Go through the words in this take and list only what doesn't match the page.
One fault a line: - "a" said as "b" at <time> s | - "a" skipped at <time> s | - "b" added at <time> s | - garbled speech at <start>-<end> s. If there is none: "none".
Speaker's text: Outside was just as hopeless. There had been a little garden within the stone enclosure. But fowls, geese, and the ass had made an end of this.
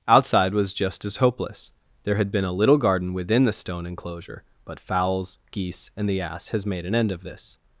- "had" said as "has" at 6.5 s